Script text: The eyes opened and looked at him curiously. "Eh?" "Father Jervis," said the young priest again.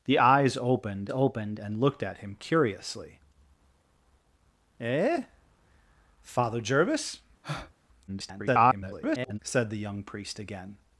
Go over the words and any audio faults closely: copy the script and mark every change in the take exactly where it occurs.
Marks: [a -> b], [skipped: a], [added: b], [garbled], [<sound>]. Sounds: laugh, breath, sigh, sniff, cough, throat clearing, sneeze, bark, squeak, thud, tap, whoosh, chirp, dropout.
The eyes opened [added: opened] and looked at him curiously. "Eh?" "Father Jervis," [breath] [garbled] said the young priest again.